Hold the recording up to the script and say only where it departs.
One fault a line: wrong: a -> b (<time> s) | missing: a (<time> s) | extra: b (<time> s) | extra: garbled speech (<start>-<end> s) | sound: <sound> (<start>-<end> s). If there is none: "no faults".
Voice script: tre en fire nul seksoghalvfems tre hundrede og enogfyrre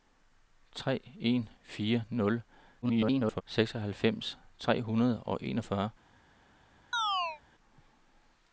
extra: garbled speech (2.8-3.4 s)
sound: chirp (6.9-7.4 s)